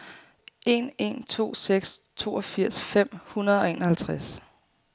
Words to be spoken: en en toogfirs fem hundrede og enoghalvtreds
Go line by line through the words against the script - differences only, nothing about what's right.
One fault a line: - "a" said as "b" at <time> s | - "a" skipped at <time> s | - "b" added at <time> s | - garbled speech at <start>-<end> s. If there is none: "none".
- "to seks" added at 1.2 s